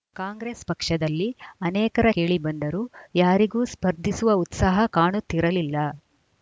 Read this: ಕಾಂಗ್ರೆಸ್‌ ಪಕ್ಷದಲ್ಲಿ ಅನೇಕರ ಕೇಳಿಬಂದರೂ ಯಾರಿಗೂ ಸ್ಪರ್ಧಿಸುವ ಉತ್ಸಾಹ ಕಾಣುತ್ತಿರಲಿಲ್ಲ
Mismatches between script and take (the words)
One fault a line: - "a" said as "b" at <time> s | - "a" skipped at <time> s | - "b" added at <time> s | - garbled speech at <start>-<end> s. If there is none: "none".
none